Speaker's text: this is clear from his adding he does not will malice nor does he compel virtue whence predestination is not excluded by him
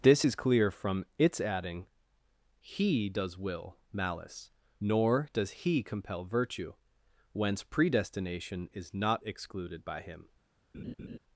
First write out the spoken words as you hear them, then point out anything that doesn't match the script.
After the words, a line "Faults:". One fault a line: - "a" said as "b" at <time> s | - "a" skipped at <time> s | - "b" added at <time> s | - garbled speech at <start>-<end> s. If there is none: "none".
this is clear from its adding he does will malice nor does he compel virtue whence predestination is not excluded by him
Faults:
- "his" said as "its" at 1.2 s
- "not" skipped at 3.4 s